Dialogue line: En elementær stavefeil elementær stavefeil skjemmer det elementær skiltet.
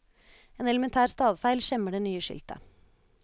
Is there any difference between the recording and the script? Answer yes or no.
yes